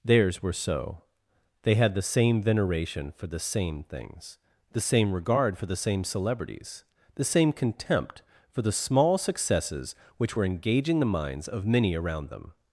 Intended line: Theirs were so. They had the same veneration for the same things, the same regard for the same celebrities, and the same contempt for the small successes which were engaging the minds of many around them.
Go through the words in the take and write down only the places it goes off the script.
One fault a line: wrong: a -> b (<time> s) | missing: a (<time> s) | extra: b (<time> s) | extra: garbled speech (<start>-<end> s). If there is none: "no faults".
missing: and (6.8 s)